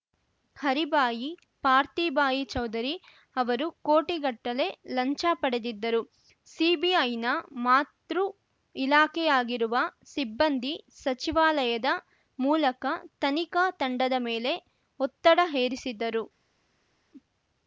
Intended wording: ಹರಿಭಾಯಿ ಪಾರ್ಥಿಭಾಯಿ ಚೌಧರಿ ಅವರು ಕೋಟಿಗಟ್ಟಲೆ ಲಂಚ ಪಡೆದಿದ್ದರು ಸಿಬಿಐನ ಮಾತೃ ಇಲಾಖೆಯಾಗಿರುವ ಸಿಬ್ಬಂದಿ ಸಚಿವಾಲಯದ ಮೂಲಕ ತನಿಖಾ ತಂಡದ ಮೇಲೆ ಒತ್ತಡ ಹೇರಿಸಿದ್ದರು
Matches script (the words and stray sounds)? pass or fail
pass